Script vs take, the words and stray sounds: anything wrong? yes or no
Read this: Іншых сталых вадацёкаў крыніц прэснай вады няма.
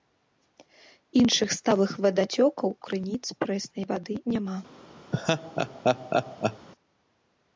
yes